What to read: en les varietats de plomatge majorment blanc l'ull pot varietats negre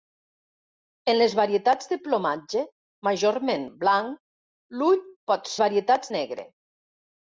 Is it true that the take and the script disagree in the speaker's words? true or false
false